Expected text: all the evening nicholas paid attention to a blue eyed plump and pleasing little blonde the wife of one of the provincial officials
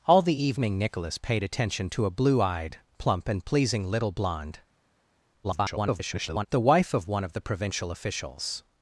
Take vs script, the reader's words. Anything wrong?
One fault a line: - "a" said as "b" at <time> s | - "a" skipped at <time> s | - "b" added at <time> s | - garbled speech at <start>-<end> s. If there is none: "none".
- garbled speech at 5.4-6.5 s